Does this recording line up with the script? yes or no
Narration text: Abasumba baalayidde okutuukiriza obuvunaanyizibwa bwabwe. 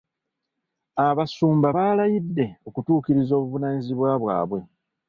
yes